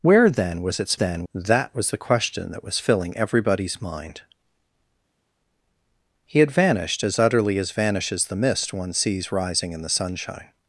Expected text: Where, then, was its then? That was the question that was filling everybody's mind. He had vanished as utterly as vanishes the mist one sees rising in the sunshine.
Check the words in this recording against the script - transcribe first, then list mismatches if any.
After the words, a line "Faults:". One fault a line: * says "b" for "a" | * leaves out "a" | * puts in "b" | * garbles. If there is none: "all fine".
Where, then, was its then? That was the question that was filling everybody's mind. He had vanished as utterly as vanishes the mist one sees rising in the sunshine.
Faults:
all fine